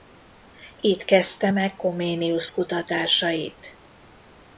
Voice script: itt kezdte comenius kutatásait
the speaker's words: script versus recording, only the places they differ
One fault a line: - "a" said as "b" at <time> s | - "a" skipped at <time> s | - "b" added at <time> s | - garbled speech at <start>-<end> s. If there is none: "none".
- "meg" added at 1.5 s